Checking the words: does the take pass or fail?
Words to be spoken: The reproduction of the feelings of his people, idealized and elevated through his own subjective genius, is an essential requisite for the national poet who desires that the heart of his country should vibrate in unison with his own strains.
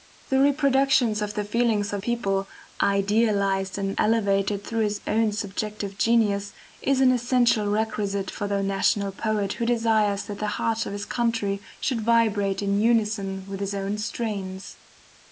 fail